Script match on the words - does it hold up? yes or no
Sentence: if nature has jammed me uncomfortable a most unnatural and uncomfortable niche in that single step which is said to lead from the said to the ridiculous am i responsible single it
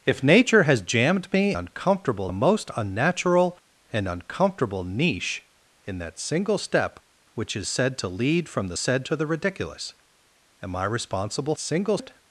yes